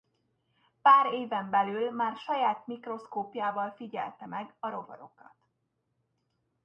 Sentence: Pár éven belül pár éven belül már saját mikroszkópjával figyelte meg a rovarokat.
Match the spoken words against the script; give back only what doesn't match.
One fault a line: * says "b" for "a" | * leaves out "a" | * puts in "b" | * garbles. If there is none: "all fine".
* leaves out "pár éven belül"